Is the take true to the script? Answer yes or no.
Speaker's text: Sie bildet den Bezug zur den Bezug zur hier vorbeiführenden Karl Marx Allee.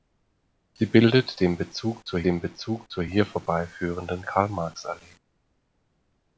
yes